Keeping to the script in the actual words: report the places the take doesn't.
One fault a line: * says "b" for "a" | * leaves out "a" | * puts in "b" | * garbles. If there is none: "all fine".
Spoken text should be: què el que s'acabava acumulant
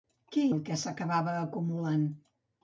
all fine